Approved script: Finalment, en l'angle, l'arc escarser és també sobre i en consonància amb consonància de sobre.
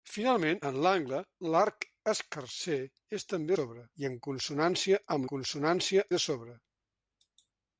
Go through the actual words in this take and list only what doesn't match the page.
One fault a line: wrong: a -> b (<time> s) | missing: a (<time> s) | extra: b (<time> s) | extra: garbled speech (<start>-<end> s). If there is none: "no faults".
no faults